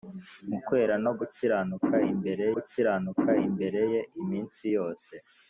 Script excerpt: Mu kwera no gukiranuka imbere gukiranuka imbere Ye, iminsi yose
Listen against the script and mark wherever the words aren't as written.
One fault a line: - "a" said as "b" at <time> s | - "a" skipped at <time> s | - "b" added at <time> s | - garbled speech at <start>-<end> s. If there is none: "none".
none